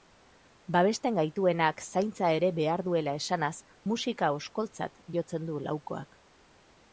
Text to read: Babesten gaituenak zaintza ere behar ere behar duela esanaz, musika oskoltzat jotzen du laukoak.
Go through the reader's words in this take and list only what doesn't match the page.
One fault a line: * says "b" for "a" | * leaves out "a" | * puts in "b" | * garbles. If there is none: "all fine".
* leaves out "ere behar"